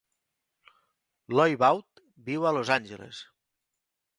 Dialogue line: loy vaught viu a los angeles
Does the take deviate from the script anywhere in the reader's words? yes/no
no